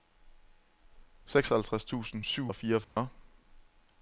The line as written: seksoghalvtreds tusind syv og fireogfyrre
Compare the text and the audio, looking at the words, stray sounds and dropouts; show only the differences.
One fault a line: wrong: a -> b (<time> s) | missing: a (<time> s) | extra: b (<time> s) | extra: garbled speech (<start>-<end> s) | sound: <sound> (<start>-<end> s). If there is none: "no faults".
sound: dropout (2.8-3.0 s)